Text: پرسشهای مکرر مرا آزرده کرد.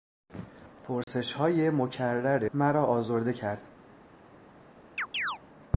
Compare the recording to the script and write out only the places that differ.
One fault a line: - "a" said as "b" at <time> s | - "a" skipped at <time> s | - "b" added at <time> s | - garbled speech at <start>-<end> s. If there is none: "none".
none